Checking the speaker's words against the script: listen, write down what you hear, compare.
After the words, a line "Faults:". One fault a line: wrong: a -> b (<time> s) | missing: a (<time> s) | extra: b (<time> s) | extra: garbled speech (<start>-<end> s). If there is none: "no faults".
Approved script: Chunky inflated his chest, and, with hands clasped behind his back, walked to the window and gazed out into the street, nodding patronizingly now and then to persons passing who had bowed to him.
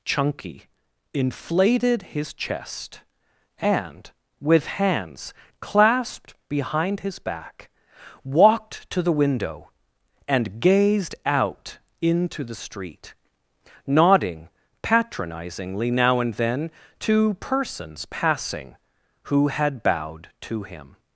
Chunky inflated his chest, and, with hands clasped behind his back, walked to the window and gazed out into the street, nodding patronizingly now and then to persons passing who had bowed to him.
Faults:
no faults